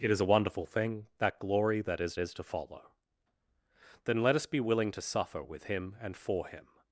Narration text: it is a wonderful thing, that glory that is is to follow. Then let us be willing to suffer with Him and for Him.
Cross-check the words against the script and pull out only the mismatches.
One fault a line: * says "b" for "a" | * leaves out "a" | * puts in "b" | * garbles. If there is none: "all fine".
all fine